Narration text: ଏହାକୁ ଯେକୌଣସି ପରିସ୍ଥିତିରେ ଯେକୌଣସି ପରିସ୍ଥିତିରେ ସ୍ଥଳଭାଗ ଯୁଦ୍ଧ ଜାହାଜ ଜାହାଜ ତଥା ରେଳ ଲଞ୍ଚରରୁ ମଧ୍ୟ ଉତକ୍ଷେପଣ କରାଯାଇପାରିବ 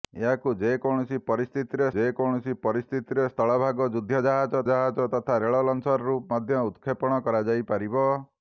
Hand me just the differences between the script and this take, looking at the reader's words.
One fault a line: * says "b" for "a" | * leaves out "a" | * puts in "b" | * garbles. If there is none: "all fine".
all fine